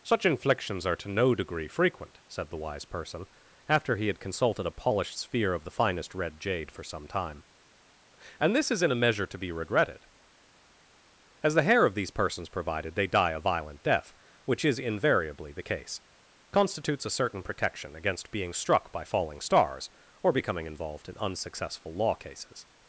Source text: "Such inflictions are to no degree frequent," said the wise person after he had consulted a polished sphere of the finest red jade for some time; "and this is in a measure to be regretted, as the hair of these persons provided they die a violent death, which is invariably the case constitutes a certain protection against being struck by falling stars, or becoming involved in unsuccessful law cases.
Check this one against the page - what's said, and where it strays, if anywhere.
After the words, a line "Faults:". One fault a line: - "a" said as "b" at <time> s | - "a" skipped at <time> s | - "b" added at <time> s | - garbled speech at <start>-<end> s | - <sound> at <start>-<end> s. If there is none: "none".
"Such inflictions are to no degree frequent," said the wise person after he had consulted a polished sphere of the finest red jade for some time; "and this is in a measure to be regretted, as the hair of these persons provided they die a violent death, which is invariably the case constitutes a certain protection against being struck by falling stars, or becoming involved in unsuccessful law cases.
Faults:
none